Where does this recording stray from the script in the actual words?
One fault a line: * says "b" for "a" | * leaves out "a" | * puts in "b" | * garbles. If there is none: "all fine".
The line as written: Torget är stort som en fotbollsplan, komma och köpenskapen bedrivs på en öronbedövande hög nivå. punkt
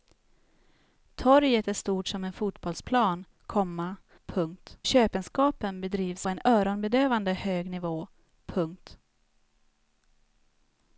* says "punkt" for "och"
* leaves out "på"